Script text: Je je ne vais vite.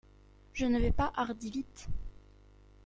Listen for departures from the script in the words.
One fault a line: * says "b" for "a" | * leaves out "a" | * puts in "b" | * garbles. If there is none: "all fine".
* leaves out "je"
* puts in "pas hardi"